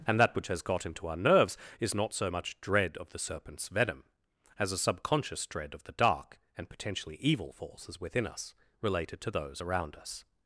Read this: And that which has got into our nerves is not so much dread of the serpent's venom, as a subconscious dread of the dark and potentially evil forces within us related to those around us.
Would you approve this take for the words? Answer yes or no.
yes